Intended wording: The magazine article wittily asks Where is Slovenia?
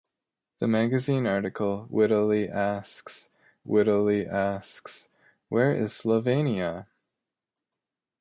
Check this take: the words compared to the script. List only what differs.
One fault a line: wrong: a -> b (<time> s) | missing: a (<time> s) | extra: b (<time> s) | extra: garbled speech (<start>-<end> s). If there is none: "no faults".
extra: wittily asks (3.7 s)